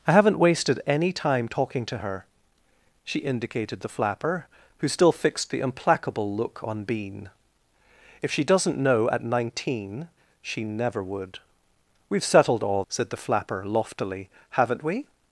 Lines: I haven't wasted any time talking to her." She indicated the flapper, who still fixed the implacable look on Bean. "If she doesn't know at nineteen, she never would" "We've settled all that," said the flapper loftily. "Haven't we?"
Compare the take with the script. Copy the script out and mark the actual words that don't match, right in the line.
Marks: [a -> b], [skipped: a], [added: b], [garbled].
I haven't wasted any time talking to her." She indicated the flapper, who still fixed the implacable look on Bean. "If she doesn't know at nineteen, she never would" "We've settled all [skipped: that,"] said the flapper loftily. "Haven't we?"